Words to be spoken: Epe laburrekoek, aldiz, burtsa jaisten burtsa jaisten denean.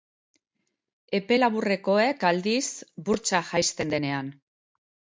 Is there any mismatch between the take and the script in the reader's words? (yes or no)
yes